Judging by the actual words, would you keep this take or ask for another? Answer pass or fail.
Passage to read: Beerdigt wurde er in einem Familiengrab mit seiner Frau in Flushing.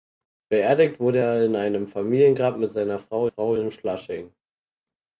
fail